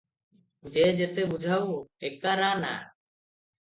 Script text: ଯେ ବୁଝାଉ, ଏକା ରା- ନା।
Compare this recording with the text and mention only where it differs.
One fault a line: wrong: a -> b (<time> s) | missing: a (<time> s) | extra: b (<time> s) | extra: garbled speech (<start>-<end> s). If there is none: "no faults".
extra: ଯେତେ (0.9 s)